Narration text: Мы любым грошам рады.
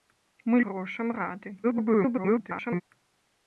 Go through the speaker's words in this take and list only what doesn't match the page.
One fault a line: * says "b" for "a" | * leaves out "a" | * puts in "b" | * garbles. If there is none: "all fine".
* leaves out "любым"
* garbles